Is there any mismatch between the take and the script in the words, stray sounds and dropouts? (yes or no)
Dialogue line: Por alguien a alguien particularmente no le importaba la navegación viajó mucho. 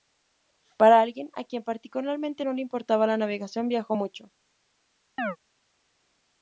yes